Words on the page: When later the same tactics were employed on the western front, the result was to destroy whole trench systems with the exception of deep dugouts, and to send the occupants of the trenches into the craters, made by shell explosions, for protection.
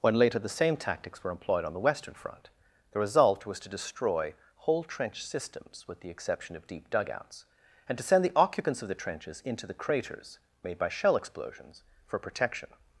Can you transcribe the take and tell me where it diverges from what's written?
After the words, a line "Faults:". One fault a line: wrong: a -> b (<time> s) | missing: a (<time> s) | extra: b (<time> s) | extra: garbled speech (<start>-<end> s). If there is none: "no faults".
When later the same tactics were employed on the western front, the result was to destroy whole trench systems with the exception of deep dugouts, and to send the occupants of the trenches into the craters, made by shell explosions, for protection.
Faults:
no faults